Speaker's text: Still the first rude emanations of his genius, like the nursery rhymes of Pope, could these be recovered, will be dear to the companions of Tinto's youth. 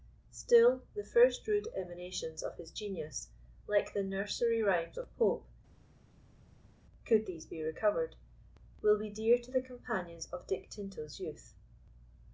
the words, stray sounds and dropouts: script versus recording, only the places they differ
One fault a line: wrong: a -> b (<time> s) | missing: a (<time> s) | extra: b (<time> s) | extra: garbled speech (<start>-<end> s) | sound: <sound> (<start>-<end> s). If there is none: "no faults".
extra: Dick (10.5 s)